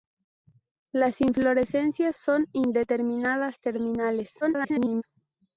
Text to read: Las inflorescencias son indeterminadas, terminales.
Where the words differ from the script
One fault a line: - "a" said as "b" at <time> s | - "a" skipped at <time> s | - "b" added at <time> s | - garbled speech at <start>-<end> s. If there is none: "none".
- garbled speech at 4.4-5.0 s